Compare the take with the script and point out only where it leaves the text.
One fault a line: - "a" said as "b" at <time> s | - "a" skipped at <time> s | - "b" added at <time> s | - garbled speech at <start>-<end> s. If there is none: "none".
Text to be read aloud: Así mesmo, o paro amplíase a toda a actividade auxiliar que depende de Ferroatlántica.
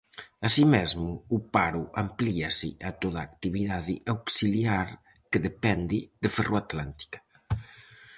none